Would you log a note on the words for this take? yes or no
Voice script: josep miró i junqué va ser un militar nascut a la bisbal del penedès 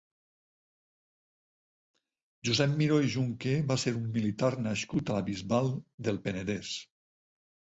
no